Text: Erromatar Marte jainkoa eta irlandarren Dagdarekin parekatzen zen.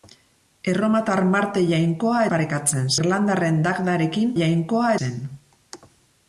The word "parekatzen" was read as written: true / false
false